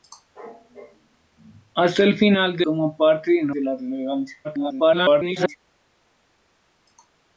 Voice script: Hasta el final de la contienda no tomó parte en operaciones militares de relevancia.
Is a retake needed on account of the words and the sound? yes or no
yes